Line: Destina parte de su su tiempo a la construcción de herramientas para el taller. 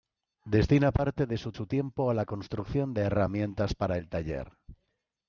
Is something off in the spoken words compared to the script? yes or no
no